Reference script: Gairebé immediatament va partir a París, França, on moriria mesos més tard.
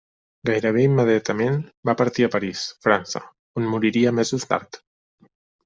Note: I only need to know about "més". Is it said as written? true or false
false